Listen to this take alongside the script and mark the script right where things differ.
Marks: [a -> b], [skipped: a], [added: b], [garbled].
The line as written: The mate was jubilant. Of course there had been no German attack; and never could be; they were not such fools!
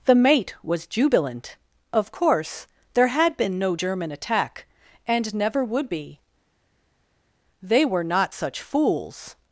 The mate was jubilant. Of course there had been no German attack; and never [could -> would] be; they were not such fools!